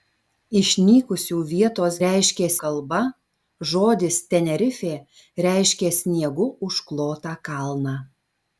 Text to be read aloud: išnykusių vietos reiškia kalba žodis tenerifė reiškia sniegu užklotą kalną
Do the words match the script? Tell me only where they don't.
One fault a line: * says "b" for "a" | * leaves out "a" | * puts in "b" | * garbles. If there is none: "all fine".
all fine